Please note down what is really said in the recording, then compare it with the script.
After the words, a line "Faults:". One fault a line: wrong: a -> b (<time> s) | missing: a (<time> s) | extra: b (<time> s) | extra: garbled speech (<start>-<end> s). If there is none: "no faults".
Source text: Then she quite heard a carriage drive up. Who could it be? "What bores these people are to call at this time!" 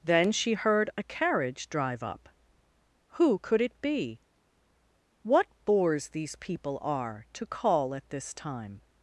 Then she heard a carriage drive up. Who could it be? "What bores these people are to call at this time!"
Faults:
missing: quite (0.5 s)